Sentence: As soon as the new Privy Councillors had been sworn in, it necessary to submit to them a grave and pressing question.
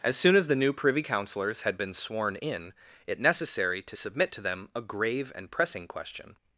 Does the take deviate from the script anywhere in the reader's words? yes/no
no